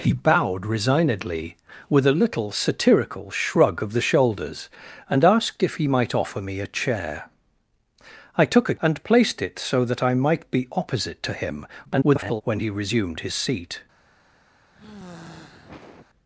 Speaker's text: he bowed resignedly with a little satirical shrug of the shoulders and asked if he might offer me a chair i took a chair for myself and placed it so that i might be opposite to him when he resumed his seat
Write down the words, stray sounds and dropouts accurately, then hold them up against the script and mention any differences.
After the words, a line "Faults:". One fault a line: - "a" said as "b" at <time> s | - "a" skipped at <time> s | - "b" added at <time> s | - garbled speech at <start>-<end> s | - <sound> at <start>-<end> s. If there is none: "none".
he bowed resignedly with a little satirical shrug of the shoulders and asked if he might offer me a chair i took a and placed it so that i might be opposite to him [garbled] when he resumed his seat
Faults:
- "chair for myself" skipped at 8.8 s
- garbled speech at 11.8-12.4 s
- sigh at 14.7-16.1 s